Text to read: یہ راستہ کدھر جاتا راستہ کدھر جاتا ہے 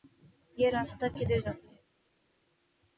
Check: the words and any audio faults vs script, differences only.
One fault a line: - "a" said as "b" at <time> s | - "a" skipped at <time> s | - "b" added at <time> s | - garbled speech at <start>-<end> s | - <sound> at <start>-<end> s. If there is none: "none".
- "راستہ کدھر جاتا" skipped at 1.7 s